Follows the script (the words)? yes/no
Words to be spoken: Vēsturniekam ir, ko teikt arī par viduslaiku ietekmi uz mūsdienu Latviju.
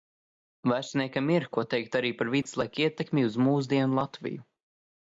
yes